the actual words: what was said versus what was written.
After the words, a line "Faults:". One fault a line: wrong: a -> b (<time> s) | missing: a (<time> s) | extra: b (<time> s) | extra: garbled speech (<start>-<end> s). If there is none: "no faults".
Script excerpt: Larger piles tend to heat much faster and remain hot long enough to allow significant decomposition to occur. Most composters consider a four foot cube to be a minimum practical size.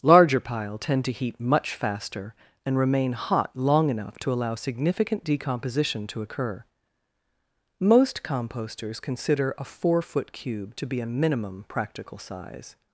Larger pile tend to heat much faster and remain hot long enough to allow significant decomposition to occur. Most composters consider a four foot cube to be a minimum practical size.
Faults:
wrong: piles -> pile (0.4 s)